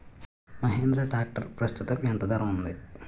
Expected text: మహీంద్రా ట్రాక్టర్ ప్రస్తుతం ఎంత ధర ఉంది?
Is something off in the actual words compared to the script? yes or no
no